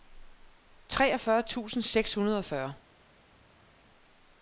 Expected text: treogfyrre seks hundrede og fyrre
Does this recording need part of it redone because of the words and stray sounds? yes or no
yes